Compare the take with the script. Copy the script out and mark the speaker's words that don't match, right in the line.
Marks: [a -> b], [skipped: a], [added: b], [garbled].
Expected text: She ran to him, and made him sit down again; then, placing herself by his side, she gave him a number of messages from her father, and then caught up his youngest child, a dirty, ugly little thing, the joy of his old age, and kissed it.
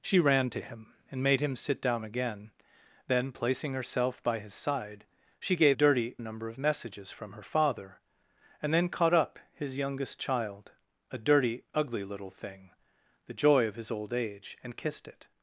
She ran to him, and made him sit down again; then, placing herself by his side, she gave [him -> dirty] a number of messages from her father, and then caught up his youngest child, a dirty, ugly little thing, the joy of his old age, and kissed it.